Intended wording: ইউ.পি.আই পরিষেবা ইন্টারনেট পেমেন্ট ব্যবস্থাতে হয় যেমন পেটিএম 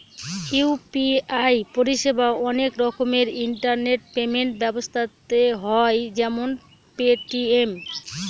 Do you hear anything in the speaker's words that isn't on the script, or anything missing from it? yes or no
yes